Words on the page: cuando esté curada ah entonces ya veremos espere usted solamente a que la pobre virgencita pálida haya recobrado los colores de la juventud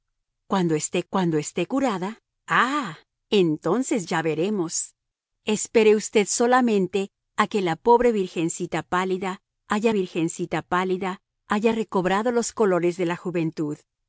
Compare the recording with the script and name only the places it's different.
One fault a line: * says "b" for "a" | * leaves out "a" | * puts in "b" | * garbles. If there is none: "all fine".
* puts in "cuando esté"
* puts in "virgencita pálida haya"